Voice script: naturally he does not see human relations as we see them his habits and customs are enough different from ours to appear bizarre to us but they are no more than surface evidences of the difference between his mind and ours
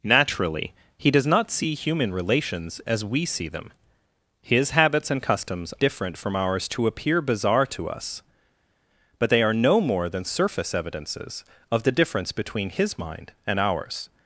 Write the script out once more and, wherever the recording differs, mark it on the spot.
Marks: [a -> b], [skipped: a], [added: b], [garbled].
naturally he does not see human relations as we see them his habits and customs [skipped: are enough] different from ours to appear bizarre to us but they are no more than surface evidences of the difference between his mind and ours